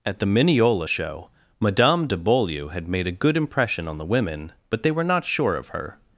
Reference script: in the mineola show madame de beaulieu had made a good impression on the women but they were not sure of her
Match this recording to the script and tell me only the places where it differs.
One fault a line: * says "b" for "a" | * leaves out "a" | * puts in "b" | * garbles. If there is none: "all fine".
* says "at" for "in"